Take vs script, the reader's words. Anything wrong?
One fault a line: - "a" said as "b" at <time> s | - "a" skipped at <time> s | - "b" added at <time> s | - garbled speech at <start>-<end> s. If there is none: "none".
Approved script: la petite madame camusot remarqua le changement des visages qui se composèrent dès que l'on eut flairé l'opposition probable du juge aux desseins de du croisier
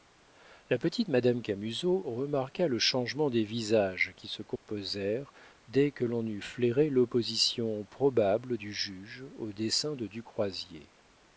none